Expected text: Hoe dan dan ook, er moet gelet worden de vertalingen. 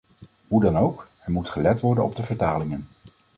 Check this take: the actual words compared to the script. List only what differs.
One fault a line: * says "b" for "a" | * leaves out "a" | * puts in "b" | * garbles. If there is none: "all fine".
* leaves out "dan"
* puts in "op"